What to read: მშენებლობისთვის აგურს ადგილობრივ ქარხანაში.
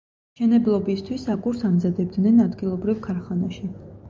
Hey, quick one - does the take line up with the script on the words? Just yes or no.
no